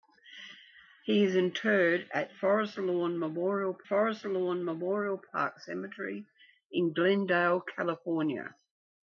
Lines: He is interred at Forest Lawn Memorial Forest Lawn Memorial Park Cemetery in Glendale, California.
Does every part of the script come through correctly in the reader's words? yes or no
yes